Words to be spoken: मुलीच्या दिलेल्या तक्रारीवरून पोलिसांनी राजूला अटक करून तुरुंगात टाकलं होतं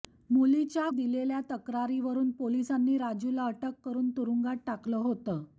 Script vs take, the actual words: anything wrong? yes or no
no